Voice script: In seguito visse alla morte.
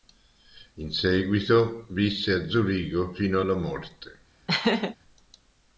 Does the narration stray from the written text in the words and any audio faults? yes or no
yes